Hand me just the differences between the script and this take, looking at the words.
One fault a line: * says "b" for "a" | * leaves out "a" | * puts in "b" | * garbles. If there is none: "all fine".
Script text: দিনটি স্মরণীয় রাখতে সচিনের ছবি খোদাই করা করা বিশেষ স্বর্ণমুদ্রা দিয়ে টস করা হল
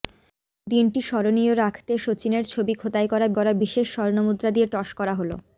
all fine